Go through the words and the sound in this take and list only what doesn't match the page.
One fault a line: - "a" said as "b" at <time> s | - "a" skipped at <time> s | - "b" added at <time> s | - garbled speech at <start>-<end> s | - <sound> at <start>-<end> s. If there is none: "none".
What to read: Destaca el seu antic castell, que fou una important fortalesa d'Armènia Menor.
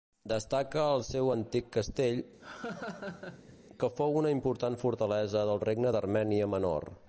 - laugh at 2.4-3.6 s
- "del Regne" added at 5.5 s